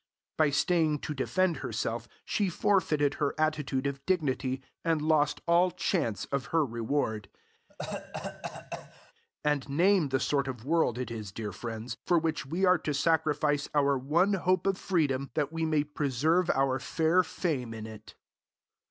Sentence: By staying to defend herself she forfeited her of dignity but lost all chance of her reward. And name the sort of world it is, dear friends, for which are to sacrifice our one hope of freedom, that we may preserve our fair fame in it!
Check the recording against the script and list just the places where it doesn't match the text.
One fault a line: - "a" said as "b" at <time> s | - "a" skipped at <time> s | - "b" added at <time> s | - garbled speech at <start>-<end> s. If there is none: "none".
- "attitude" added at 3.4 s
- "but" said as "and" at 4.8 s
- "we" added at 12.5 s